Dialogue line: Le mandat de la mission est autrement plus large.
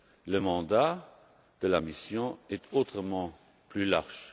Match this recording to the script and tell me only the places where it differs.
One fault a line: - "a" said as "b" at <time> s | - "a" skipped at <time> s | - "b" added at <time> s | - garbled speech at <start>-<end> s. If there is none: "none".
none